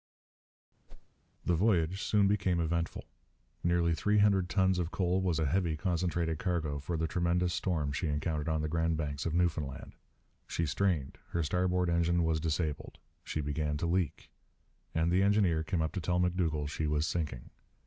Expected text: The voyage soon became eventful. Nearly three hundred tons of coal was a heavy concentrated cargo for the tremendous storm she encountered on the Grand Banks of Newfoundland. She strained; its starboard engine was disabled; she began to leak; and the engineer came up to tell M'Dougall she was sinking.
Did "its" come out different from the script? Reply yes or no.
yes